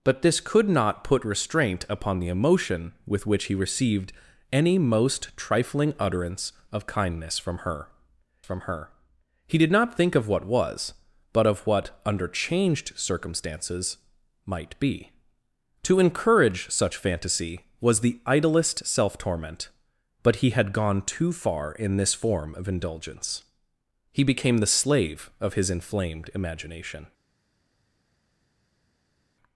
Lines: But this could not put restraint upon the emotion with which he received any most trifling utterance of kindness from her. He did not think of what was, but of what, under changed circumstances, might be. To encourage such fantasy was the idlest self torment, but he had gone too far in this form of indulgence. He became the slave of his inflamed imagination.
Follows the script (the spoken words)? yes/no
no